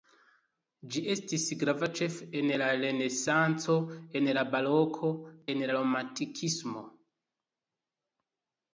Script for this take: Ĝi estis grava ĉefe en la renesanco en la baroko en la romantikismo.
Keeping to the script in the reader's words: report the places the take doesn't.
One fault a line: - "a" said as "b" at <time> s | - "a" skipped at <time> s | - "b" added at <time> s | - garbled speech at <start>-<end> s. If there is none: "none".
none